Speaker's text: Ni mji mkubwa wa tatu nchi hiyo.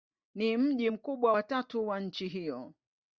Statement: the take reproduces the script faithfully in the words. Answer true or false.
false